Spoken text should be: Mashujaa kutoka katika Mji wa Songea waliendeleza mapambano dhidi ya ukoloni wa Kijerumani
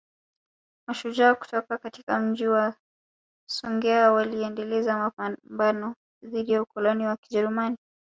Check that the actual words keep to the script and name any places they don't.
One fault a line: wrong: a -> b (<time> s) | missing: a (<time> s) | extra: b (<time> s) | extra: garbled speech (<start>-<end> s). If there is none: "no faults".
no faults